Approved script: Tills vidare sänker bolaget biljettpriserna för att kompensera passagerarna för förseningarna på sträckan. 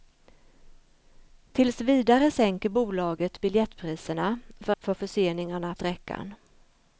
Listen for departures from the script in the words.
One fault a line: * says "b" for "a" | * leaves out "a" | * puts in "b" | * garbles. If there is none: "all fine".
* leaves out "att kompensera passagerarna"
* leaves out "på"